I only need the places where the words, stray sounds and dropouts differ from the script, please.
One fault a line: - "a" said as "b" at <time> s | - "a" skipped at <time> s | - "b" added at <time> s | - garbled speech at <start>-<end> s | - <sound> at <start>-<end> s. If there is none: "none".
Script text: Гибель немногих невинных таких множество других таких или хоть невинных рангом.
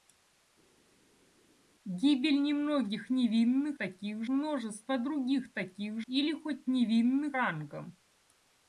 none